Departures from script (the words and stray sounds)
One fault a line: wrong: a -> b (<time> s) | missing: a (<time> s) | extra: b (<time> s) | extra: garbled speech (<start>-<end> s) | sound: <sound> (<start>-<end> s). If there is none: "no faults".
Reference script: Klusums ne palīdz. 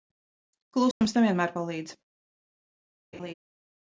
sound: dropout (0.9-1.0 s)
extra: vienmēr (1.3 s)
sound: laugh (3.1-3.3 s)